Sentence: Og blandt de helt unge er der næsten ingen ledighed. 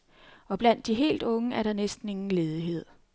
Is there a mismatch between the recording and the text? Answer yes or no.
no